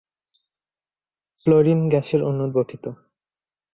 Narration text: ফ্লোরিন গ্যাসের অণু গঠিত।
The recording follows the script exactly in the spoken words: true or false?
true